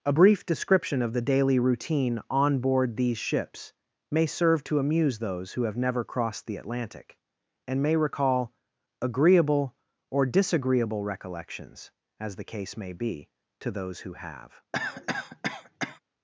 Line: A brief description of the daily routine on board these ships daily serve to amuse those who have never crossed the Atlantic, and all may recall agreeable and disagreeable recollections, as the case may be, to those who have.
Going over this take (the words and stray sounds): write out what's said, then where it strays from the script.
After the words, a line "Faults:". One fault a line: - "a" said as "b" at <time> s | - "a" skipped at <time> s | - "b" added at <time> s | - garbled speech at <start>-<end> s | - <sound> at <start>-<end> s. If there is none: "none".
A brief description of the daily routine on board these ships may serve to amuse those who have never crossed the Atlantic, and may recall agreeable or disagreeable recollections, as the case may be, to those who have.
Faults:
- "daily" said as "may" at 4.1 s
- "all" skipped at 7.8 s
- "and" said as "or" at 10.1 s
- cough at 14.7-16.0 s